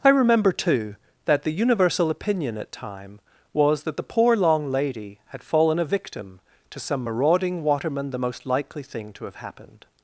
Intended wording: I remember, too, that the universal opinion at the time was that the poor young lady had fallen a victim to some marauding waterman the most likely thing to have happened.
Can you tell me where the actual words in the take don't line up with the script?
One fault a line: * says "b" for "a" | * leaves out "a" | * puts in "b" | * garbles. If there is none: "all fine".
* leaves out "the"
* says "long" for "young"